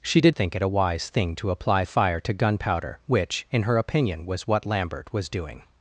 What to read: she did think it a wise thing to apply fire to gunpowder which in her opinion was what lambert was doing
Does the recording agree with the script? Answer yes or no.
yes